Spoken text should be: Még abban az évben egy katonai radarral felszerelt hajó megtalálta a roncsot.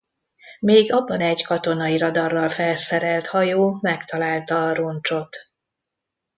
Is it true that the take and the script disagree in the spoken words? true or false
true